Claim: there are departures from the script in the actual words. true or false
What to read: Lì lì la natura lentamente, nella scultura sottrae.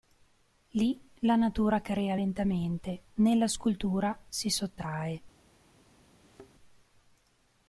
true